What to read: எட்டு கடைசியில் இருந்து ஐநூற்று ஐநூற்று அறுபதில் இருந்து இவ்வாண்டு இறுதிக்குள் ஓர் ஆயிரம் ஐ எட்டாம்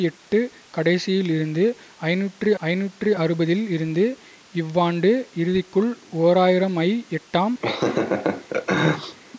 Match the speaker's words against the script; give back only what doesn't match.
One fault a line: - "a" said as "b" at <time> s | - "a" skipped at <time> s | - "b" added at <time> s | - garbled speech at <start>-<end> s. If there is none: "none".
none